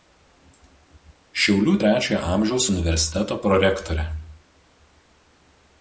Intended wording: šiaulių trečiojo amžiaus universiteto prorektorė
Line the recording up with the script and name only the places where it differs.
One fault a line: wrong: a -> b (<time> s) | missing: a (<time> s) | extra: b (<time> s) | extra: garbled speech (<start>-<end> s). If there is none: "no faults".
no faults